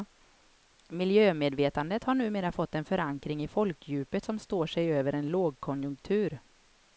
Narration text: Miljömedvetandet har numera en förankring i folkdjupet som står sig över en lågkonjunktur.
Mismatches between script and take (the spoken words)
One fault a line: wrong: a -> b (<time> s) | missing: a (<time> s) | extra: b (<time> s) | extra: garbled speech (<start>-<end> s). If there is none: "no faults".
extra: fått (2.5 s)